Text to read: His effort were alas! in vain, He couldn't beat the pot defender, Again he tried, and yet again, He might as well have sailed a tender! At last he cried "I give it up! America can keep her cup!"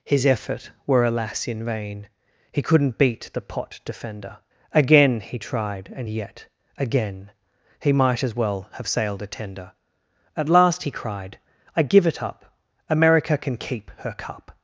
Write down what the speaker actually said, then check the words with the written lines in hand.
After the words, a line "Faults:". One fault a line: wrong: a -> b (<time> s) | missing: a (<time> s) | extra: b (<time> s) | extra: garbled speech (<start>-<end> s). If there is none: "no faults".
His effort were alas! in vain, He couldn't beat the pot defender, Again he tried, and yet again, He might as well have sailed a tender! At last he cried "I give it up! America can keep her cup!"
Faults:
no faults